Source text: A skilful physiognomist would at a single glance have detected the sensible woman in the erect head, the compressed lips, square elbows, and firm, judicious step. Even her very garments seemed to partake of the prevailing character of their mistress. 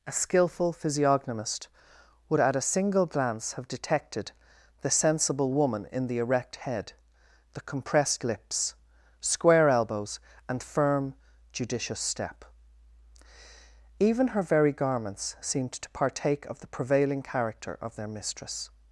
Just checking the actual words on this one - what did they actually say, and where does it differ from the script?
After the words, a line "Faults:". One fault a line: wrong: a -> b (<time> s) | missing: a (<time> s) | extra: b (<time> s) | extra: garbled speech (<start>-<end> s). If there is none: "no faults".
A skilful physiognomist would at a single glance have detected the sensible woman in the erect head, the compressed lips, square elbows, and firm, judicious step. Even her very garments seemed to partake of the prevailing character of their mistress.
Faults:
no faults